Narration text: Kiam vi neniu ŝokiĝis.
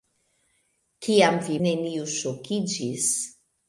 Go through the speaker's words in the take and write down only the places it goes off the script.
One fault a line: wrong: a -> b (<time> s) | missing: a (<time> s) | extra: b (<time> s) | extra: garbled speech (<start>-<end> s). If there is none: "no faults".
no faults